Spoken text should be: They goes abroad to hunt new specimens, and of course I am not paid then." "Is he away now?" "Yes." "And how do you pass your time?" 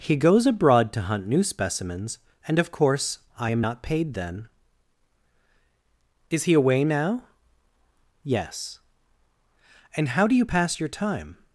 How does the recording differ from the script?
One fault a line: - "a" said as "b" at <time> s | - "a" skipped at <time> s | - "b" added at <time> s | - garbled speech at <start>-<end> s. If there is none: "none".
- "They" said as "He" at 0.0 s